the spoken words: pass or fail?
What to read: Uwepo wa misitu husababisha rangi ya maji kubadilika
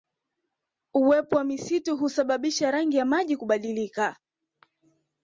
pass